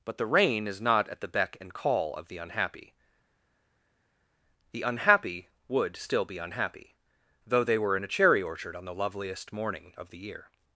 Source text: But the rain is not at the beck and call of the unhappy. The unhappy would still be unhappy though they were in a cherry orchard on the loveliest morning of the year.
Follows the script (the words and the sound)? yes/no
yes